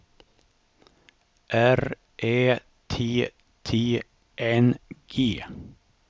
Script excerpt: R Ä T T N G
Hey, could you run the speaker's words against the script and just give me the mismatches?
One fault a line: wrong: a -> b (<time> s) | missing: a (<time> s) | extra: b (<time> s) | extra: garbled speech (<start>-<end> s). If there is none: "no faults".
no faults